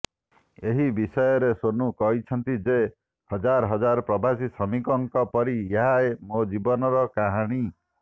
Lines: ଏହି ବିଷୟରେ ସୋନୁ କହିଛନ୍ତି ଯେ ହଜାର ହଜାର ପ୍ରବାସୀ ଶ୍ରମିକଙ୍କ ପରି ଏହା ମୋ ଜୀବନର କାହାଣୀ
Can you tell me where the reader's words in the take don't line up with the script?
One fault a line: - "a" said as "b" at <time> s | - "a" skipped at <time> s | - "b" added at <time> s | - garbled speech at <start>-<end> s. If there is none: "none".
none